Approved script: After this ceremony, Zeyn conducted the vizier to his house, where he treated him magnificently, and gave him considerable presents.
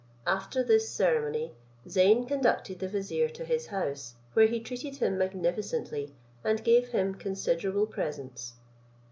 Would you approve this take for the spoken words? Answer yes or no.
yes